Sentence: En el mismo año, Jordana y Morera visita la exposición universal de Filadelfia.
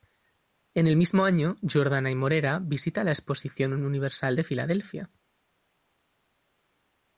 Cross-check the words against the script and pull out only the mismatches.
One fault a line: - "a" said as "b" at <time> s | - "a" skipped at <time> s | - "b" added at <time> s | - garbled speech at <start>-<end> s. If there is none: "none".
none